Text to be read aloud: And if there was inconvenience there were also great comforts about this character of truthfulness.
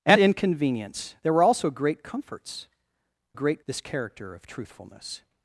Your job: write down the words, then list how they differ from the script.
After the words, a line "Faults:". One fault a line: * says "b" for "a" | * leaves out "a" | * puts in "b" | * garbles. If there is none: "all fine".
And inconvenience there were also great comforts great this character of truthfulness.
Faults:
* leaves out "if there was"
* says "great" for "about"